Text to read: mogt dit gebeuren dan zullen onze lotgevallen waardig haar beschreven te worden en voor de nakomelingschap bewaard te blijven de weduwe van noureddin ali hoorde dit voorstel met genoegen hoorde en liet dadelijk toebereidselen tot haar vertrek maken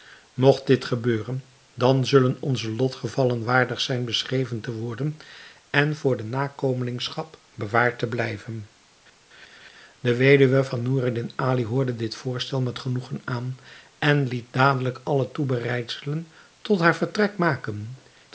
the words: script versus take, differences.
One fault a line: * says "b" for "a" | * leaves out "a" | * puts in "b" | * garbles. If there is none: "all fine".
* says "zijn" for "haar"
* says "aan" for "hoorde"
* puts in "alle"